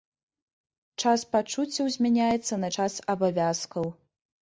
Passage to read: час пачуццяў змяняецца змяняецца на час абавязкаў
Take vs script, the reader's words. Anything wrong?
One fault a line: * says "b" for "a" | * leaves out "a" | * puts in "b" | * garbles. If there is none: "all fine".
* leaves out "змяняецца"